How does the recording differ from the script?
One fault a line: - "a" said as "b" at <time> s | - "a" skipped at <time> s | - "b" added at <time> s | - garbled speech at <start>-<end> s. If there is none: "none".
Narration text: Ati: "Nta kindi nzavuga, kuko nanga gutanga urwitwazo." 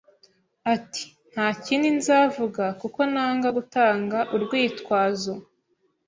none